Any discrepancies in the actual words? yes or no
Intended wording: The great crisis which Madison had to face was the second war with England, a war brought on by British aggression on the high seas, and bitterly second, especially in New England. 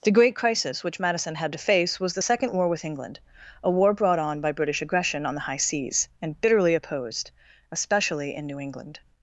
yes